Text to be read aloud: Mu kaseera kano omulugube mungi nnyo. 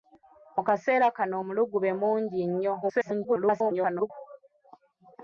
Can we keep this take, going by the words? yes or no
no